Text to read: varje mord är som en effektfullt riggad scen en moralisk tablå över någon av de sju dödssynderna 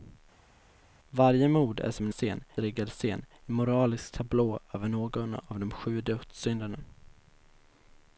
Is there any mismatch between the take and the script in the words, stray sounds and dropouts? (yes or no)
yes